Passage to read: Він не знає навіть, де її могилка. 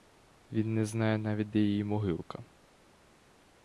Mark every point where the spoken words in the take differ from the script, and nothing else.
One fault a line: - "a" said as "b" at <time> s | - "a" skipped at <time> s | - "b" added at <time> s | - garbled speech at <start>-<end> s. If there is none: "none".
none